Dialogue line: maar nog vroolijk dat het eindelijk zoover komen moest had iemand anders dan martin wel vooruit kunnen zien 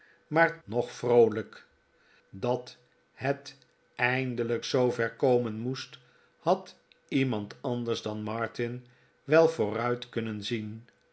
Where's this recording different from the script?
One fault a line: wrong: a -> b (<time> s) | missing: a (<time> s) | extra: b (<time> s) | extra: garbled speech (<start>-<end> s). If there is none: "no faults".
no faults